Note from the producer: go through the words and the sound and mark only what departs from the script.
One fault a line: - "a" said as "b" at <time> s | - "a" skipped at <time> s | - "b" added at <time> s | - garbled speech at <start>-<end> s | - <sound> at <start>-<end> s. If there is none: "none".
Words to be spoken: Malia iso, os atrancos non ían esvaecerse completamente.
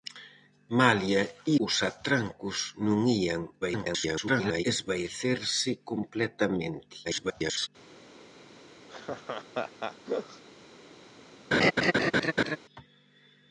- "iso" skipped at 1.2 s
- garbled speech at 3.6-4.6 s
- garbled speech at 7.0-7.7 s
- laugh at 8.9-10.4 s
- laugh at 11.5-12.6 s